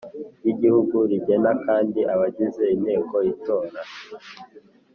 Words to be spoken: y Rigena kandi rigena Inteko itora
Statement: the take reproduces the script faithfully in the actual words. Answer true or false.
false